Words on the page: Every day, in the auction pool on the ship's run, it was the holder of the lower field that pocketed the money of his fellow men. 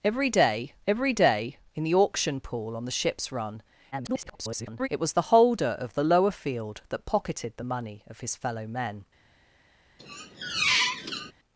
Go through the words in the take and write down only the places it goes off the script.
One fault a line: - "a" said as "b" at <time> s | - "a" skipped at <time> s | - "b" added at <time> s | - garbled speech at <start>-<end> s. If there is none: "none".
- "every day" added at 0.9 s
- garbled speech at 3.9-4.9 s